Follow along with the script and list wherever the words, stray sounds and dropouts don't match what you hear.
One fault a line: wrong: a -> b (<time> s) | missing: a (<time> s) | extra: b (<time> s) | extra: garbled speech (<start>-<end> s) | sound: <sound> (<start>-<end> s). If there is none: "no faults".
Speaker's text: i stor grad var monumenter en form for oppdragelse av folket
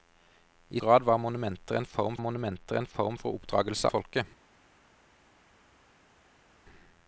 missing: stor (0.8 s)
extra: monumenter en form (2.2 s)
missing: av (3.9 s)